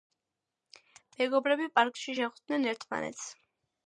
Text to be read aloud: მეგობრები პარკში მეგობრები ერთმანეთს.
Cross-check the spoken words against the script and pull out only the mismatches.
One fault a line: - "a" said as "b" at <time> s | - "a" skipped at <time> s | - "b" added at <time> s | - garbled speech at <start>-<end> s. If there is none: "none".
- "მეგობრები" said as "შეხვდნენ" at 2.2 s